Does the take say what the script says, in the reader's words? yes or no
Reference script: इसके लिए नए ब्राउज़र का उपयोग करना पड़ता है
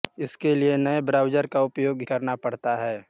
yes